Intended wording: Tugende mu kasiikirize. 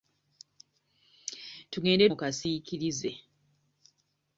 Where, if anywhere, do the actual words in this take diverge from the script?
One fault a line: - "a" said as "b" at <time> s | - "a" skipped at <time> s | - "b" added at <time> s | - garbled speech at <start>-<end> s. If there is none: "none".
none